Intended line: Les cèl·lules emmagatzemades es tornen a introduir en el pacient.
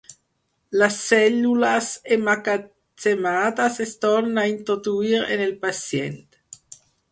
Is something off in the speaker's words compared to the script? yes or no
no